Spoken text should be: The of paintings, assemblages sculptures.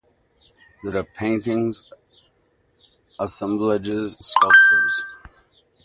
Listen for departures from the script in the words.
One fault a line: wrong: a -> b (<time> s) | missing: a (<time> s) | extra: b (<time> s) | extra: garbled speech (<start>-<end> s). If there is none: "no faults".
no faults